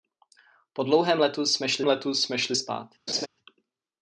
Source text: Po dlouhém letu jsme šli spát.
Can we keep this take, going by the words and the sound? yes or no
no